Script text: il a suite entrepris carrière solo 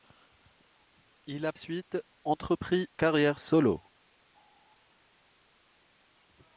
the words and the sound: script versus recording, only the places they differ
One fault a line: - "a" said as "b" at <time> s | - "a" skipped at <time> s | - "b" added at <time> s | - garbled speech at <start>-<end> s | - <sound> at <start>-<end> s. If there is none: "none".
none